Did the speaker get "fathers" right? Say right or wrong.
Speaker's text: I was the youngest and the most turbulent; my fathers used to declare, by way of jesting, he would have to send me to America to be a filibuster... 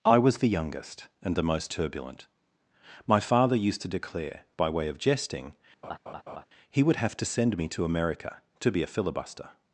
wrong